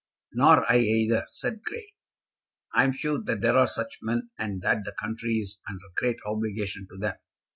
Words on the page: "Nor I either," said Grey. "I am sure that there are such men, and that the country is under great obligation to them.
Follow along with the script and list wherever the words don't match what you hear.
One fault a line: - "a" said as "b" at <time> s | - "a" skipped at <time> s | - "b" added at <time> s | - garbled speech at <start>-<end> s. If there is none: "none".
none